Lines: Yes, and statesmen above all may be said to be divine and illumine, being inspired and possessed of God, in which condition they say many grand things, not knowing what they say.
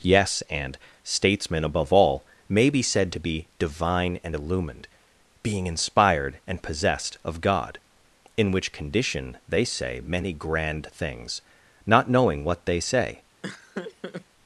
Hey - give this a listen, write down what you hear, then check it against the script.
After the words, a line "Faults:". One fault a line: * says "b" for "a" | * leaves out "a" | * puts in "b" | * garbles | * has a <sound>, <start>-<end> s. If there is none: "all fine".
Yes, and statesmen above all may be said to be divine and illumined, being inspired and possessed of God, in which condition they say many grand things, not knowing what they say.
Faults:
* says "illumined" for "illumine"
* has a laugh, 13.4-14.3 s